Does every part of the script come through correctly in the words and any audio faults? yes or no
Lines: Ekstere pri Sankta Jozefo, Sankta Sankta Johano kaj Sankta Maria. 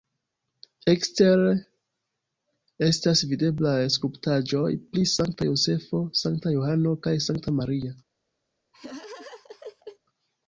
no